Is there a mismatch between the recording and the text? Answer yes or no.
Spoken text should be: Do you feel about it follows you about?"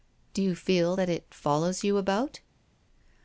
yes